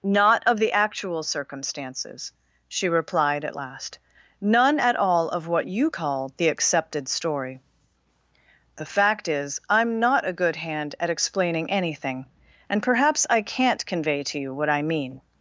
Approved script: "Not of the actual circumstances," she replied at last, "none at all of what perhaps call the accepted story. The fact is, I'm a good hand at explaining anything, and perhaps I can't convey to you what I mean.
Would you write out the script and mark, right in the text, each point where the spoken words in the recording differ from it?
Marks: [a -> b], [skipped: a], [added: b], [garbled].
"Not of the actual circumstances," she replied at last, "none at all of what [perhaps -> you] call the accepted story. The fact is, I'm [added: not] a good hand at explaining anything, and perhaps I can't convey to you what I mean.